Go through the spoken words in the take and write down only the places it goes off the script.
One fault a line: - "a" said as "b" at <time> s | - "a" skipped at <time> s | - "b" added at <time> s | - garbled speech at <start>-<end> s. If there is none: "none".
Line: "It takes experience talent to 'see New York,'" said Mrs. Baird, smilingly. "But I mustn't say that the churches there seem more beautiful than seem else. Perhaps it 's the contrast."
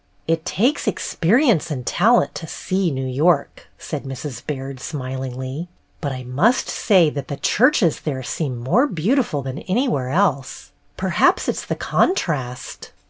- "and" added at 1.7 s
- "mustn't" said as "must" at 6.2 s
- "seem" said as "anywhere" at 9.7 s